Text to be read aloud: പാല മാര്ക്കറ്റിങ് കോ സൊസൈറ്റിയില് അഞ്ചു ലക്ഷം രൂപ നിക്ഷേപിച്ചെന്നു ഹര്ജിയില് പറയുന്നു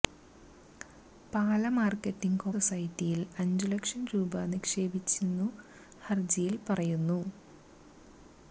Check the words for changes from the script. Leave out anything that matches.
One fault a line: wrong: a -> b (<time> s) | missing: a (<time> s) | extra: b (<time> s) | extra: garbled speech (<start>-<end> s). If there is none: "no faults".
no faults